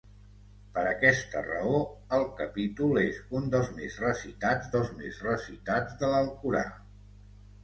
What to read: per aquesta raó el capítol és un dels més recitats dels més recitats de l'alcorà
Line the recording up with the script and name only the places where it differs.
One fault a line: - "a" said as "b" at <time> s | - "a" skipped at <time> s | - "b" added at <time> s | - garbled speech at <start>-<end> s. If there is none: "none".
none